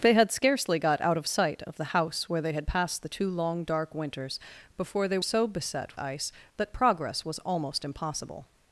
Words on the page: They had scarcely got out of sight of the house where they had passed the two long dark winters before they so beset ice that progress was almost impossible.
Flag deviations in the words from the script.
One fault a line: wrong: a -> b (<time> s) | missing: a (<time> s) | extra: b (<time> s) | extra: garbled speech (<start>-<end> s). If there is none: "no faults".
no faults